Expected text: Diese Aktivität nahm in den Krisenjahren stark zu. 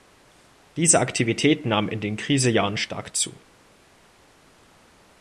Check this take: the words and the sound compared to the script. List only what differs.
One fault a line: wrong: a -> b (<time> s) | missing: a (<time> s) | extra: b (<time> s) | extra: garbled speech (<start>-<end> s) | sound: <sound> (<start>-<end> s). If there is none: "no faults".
no faults